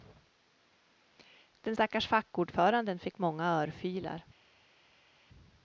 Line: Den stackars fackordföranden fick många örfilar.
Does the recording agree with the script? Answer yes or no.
yes